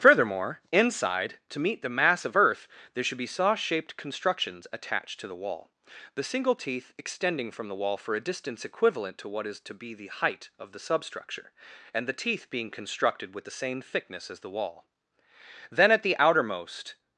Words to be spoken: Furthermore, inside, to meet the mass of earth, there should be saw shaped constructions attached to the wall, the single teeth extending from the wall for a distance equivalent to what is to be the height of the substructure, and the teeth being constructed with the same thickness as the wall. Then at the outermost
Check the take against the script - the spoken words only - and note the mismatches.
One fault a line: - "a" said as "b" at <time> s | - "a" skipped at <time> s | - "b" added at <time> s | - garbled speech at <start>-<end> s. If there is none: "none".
none